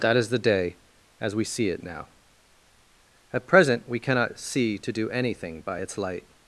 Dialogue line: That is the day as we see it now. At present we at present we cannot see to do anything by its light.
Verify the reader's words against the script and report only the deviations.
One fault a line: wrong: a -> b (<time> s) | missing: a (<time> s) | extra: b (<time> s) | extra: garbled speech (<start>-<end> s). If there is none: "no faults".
missing: at present we (4.0 s)